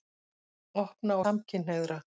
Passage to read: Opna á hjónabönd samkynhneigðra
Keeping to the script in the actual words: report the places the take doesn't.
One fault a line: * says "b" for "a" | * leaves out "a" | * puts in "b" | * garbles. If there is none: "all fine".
* leaves out "hjónabönd"